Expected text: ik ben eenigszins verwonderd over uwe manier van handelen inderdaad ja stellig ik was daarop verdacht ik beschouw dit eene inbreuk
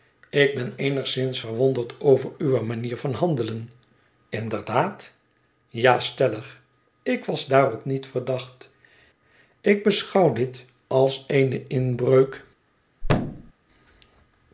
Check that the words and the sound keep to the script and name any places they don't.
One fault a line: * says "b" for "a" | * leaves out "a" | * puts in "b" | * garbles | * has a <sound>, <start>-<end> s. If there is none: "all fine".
* puts in "niet"
* puts in "als"
* has a thud, 13.0-13.5 s